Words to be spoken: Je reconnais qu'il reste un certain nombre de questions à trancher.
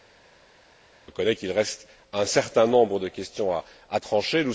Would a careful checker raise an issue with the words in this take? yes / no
no